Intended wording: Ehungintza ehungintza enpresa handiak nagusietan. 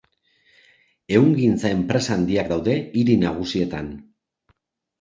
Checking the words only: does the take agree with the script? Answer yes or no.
no